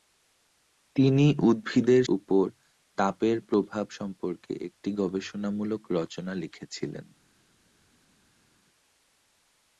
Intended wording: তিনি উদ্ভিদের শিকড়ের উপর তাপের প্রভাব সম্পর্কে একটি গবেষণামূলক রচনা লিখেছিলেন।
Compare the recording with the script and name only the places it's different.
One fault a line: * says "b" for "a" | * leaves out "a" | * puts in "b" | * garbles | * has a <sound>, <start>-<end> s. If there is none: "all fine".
* leaves out "শিকড়ের"